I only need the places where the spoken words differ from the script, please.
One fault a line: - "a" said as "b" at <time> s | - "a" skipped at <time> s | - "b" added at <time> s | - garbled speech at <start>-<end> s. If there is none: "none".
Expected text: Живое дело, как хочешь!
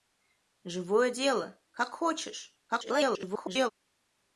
- garbled speech at 2.7-3.7 s